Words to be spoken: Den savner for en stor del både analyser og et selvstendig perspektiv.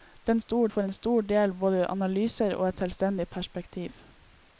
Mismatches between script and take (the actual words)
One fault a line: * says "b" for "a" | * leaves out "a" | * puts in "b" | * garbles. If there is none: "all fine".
* says "stor" for "savner"